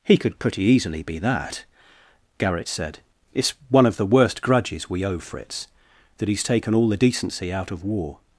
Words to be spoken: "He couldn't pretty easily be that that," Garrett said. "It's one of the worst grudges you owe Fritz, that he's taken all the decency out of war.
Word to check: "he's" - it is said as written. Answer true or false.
true